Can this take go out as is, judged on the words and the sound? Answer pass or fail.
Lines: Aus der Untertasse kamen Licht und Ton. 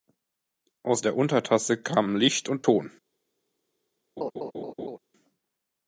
fail